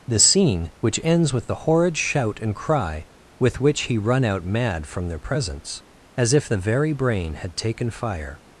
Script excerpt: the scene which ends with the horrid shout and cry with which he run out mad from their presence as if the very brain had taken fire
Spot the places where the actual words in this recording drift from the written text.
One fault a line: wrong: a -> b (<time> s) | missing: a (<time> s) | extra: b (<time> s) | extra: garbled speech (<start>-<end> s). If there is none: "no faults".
no faults